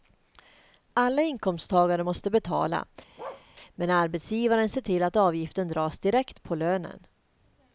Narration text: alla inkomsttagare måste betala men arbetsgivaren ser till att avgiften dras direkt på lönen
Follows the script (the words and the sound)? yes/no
no